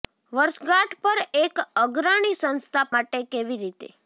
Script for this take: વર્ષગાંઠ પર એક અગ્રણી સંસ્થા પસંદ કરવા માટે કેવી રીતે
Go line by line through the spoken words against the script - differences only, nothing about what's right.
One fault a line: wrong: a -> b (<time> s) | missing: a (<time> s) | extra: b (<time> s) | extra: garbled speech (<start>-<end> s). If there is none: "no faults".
missing: પસંદ કરવા (2.9 s)